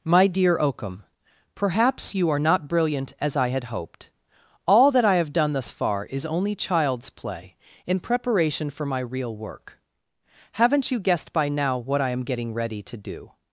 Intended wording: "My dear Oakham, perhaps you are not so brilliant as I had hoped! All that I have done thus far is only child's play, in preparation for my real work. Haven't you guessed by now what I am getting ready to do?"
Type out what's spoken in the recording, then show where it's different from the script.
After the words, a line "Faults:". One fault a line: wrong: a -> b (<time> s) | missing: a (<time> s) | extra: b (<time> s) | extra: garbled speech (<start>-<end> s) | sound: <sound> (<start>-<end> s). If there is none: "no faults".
"My dear Oakham, perhaps you are not brilliant as I had hoped! All that I have done thus far is only child's play, in preparation for my real work. Haven't you guessed by now what I am getting ready to do?"
Faults:
missing: so (2.7 s)